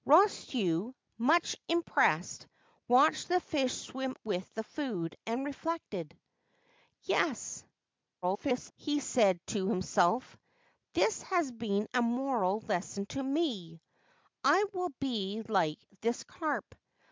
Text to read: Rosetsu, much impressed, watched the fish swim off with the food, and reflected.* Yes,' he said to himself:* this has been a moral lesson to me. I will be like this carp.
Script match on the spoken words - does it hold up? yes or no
no